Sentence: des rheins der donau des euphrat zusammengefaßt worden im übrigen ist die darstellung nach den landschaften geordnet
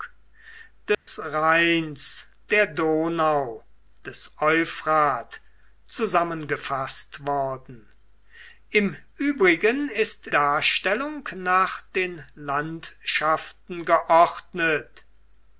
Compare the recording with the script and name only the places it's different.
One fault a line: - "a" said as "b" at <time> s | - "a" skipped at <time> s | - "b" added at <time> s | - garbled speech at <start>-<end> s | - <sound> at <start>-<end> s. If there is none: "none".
- dropout at 0.9-1.1 s
- "die" skipped at 10.3 s